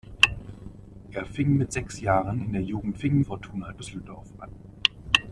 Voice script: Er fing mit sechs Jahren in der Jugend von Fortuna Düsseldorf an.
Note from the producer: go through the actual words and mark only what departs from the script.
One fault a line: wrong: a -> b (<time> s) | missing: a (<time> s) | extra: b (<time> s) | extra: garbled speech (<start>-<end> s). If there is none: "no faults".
wrong: von -> fing (2.9 s)